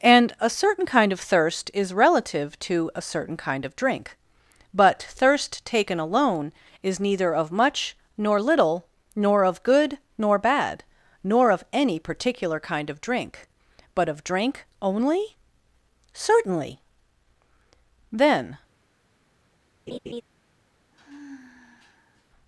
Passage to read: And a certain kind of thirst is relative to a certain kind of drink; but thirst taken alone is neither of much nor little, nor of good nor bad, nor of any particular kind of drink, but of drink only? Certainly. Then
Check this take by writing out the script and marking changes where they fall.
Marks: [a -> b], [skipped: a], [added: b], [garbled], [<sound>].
And a certain kind of thirst is relative to a certain kind of drink; but thirst taken alone is neither of much nor little, nor of good nor bad, nor of any particular kind of drink, but of drink only? Certainly. Then [laugh] [sigh]